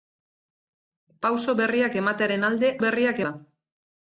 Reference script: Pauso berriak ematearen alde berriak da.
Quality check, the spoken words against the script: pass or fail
pass